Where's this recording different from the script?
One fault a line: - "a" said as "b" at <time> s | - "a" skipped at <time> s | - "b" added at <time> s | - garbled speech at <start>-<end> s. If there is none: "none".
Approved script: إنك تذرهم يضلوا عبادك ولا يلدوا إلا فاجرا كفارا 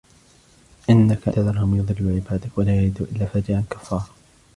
none